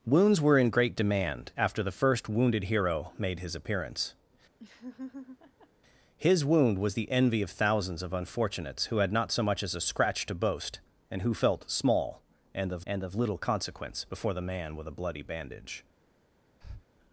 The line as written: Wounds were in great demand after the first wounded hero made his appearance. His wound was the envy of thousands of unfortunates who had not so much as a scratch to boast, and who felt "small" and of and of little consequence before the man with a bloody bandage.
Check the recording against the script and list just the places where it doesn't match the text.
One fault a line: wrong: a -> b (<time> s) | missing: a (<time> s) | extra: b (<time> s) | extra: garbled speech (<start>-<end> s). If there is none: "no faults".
no faults